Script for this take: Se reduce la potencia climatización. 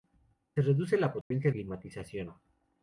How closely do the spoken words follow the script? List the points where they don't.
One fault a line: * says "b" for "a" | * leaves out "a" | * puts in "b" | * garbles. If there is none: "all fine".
all fine